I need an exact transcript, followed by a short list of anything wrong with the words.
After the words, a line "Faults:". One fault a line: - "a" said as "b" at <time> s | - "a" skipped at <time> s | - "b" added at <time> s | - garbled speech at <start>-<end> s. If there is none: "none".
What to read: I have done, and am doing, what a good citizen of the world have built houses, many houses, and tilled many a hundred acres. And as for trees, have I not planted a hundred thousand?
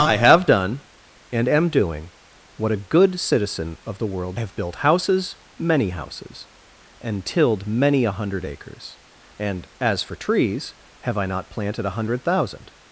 I have done, and am doing, what a good citizen of the world have built houses, many houses, and tilled many a hundred acres. And as for trees, have I not planted a hundred thousand?
Faults:
none